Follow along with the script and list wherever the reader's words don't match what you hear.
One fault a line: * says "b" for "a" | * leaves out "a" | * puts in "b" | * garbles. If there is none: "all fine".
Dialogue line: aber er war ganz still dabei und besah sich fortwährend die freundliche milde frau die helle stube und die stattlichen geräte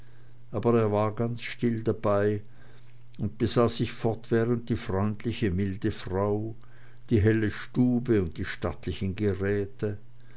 all fine